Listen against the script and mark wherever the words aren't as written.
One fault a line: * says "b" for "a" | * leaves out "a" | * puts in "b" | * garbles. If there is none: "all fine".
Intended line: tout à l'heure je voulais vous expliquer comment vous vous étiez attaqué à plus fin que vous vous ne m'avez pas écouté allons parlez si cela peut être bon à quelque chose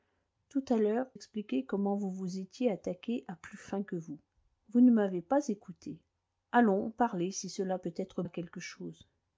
* leaves out "je voulais vous"
* leaves out "bon"